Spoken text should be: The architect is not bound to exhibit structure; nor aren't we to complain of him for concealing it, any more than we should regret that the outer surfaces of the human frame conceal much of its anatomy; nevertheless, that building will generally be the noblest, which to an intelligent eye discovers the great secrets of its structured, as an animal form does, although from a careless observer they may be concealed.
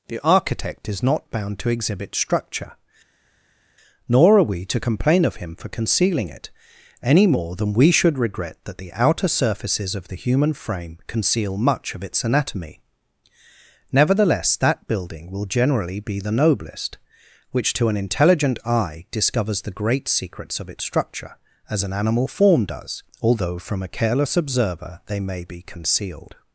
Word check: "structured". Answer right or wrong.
wrong